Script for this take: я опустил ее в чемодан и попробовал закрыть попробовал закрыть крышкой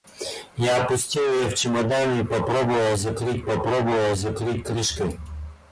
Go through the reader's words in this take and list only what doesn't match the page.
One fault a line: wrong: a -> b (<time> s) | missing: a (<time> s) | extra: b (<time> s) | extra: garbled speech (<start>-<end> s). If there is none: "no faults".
no faults